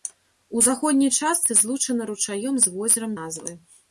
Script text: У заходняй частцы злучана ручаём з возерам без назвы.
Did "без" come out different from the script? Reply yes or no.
yes